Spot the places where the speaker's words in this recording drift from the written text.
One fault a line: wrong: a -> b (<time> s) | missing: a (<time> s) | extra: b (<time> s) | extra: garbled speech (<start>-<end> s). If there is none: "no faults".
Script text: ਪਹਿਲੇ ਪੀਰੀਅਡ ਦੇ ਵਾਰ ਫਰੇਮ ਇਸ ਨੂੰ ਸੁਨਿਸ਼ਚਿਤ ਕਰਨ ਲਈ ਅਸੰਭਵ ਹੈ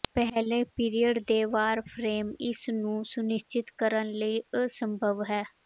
no faults